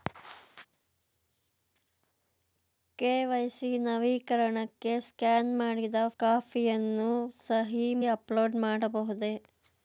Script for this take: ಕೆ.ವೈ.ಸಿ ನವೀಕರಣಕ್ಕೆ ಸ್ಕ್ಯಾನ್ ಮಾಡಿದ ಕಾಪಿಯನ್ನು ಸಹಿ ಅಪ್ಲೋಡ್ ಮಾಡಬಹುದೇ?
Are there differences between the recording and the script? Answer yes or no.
no